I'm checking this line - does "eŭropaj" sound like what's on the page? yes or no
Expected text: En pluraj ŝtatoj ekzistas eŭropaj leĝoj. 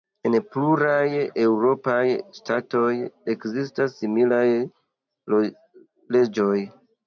no